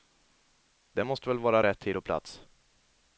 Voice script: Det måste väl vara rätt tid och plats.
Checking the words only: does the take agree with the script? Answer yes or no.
yes